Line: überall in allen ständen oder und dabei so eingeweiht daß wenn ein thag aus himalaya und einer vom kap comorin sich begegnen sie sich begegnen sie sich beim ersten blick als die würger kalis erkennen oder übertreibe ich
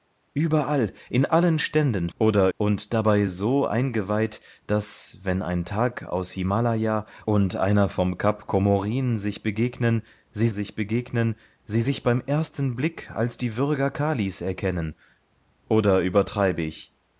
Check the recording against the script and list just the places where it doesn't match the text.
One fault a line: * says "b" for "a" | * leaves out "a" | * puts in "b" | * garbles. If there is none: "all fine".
all fine